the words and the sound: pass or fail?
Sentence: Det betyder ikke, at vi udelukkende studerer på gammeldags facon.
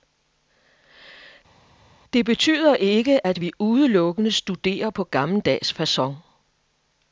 pass